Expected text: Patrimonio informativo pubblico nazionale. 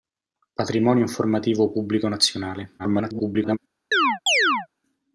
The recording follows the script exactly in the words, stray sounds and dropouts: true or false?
false